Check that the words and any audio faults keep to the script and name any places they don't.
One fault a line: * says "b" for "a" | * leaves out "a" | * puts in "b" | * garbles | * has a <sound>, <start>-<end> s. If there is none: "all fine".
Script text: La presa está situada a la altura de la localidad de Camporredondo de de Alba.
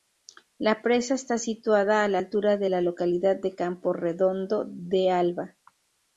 * leaves out "de"